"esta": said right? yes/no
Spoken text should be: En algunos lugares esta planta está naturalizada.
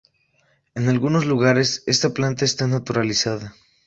yes